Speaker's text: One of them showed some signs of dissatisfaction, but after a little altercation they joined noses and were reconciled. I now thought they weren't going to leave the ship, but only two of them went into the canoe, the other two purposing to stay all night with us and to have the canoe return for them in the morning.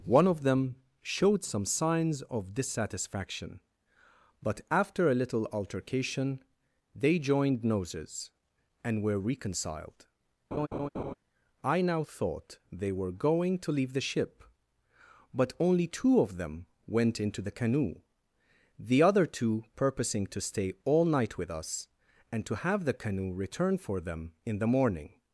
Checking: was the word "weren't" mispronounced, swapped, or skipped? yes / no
yes